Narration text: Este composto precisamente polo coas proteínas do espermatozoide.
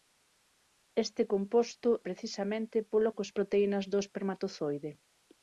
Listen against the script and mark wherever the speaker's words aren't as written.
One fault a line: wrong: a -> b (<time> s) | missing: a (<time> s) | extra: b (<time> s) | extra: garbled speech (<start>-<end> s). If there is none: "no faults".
no faults